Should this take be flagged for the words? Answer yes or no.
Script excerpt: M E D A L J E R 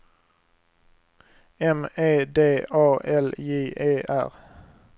no